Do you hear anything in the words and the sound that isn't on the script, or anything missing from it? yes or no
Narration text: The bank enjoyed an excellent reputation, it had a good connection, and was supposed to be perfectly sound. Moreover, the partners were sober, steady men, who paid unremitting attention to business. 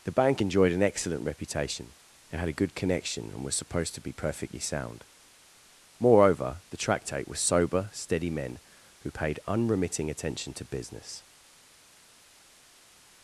yes